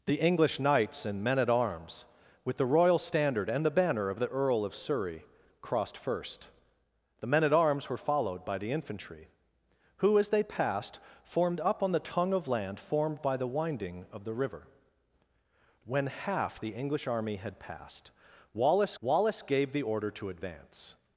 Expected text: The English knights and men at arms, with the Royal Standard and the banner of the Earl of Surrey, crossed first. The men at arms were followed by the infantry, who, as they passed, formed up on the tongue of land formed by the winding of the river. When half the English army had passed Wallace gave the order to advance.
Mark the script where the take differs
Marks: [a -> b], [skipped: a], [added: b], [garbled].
The English knights and men at arms, with the Royal Standard and the banner of the Earl of Surrey, crossed first. The men at arms were followed by the infantry, who, as they passed, formed up on the tongue of land formed by the winding of the river. When half the English army had passed Wallace [added: Wallace] gave the order to advance.